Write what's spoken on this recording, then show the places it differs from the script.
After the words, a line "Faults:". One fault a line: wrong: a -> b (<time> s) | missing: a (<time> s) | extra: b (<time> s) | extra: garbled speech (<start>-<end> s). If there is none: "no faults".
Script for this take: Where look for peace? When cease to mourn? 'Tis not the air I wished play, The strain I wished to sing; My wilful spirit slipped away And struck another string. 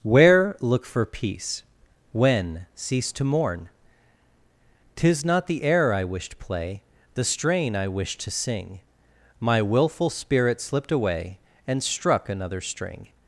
Where look for peace? When cease to mourn? 'Tis not the air I wished play, The strain I wished to sing; My wilful spirit slipped away And struck another string.
Faults:
no faults